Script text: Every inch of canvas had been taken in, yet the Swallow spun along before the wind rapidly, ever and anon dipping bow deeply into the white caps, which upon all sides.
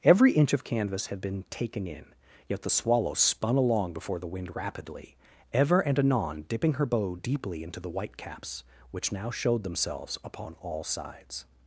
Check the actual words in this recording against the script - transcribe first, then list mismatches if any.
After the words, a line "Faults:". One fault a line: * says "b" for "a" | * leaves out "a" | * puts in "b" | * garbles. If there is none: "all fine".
Every inch of canvas had been taken in, yet the Swallow spun along before the wind rapidly, ever and anon dipping her bow deeply into the white caps, which now showed themselves upon all sides.
Faults:
* puts in "her"
* puts in "now showed themselves"